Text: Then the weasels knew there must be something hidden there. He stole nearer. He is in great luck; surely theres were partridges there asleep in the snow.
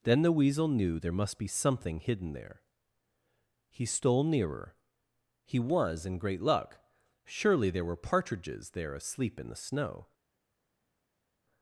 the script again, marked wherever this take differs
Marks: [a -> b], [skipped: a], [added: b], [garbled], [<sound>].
Then the [weasels -> weasel] knew there must be something hidden there. He stole nearer. He [is -> was] in great luck; surely [theres -> there] were partridges there asleep in the snow.